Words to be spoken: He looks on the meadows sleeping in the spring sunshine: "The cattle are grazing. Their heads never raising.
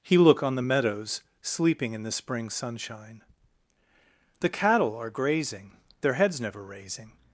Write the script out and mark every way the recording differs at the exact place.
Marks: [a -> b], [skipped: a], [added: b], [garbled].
He [looks -> look] on the meadows sleeping in the spring sunshine: "The cattle are grazing. Their heads never raising.